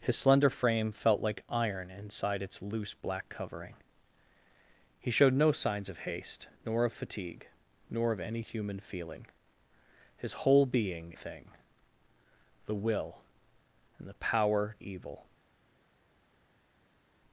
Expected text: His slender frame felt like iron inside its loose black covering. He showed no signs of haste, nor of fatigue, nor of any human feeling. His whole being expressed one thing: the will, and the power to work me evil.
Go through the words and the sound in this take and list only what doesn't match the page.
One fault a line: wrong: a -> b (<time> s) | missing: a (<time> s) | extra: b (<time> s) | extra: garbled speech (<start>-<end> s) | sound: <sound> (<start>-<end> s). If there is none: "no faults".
missing: expressed one (11.1 s)
missing: to work me (14.8 s)